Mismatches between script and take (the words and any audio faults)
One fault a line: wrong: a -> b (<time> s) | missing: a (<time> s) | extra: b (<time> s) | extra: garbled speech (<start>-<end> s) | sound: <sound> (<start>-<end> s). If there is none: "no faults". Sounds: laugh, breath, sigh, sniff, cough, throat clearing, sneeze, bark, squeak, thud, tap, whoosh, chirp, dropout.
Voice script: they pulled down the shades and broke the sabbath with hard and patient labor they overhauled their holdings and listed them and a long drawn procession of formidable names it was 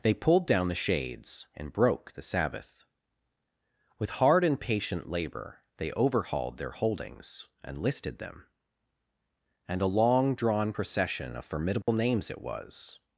sound: dropout (11.8-11.9 s)